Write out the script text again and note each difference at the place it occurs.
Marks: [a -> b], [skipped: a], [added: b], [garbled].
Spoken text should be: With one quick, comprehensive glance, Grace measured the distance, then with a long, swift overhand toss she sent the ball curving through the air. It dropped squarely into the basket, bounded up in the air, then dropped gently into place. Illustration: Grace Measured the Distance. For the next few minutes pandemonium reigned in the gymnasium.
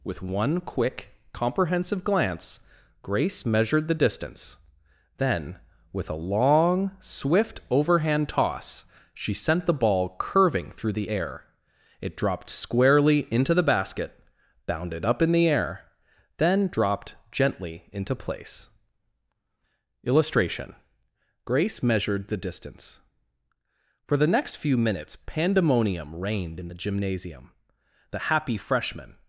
With one quick, comprehensive glance, Grace measured the distance, then with a long, swift overhand toss she sent the ball curving through the air. It dropped squarely into the basket, bounded up in the air, then dropped gently into place. Illustration: Grace Measured the Distance. For the next few minutes pandemonium reigned in the gymnasium. [added: The happy freshmen]